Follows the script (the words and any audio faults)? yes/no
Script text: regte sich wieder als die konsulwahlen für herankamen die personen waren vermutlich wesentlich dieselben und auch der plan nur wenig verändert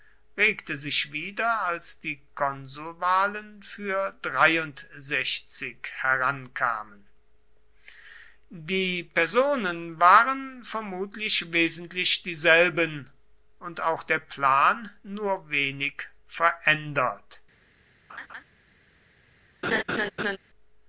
no